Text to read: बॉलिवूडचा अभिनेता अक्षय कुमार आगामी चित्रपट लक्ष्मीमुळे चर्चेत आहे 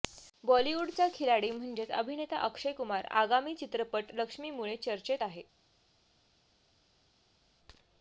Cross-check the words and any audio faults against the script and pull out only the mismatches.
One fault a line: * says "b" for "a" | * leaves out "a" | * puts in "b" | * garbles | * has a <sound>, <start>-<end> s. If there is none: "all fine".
* puts in "खिलाडी म्हणजेच"